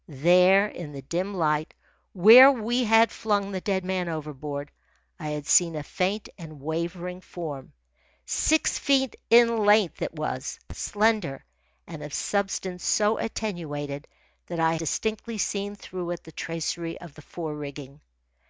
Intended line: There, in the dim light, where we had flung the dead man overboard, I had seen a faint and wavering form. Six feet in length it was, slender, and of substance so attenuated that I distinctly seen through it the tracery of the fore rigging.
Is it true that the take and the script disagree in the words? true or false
false